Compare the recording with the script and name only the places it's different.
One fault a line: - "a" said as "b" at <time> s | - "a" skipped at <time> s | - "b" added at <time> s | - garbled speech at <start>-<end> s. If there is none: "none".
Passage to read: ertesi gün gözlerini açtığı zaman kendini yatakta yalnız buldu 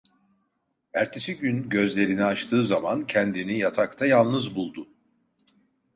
none